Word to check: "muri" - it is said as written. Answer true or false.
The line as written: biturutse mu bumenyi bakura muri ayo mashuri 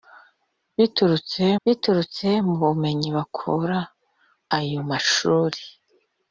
false